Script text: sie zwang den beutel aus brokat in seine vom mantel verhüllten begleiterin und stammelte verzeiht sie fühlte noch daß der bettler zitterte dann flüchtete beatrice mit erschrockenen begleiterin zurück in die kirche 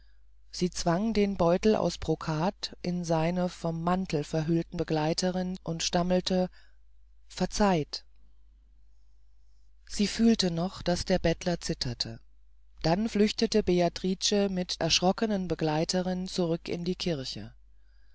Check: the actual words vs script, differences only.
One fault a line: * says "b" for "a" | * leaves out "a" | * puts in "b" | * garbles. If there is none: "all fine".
all fine